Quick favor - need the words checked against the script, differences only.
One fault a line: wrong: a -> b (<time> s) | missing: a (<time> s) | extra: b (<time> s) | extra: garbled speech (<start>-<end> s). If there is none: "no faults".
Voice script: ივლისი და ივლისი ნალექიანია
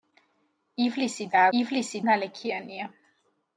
no faults